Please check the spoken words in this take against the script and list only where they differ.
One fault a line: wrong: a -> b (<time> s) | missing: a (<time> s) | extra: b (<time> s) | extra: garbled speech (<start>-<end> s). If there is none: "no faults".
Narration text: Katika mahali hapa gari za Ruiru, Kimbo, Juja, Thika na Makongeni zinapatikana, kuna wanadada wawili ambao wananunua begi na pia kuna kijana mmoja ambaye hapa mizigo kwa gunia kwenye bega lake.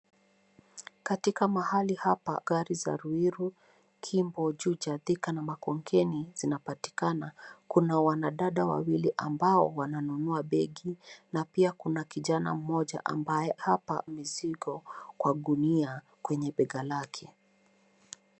no faults